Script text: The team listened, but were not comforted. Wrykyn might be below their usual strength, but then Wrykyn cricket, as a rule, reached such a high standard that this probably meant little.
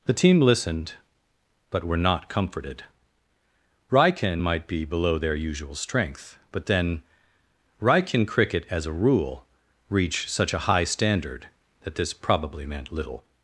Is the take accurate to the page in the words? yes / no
no